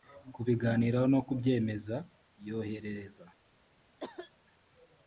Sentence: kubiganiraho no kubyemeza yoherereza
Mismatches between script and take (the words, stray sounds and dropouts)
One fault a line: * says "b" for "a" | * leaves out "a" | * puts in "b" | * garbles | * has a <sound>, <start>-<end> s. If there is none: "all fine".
* has a cough, 4.0-4.3 s